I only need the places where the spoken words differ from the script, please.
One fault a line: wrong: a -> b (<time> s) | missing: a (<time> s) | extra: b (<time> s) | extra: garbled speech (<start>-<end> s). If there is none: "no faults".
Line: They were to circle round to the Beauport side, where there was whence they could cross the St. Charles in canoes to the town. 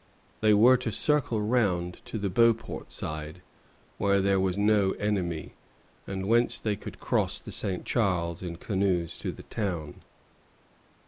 extra: no enemy and (4.6 s)